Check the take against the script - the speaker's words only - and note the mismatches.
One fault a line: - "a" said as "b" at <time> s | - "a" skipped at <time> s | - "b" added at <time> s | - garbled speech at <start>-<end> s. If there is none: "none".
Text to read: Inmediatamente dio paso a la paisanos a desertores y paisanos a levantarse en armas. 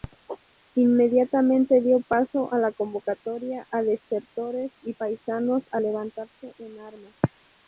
- "paisanos" said as "convocatoria" at 2.7 s